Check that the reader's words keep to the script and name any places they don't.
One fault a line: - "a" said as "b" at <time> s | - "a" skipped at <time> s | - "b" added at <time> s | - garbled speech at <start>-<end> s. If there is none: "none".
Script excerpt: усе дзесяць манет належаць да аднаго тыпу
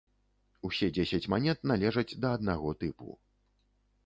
none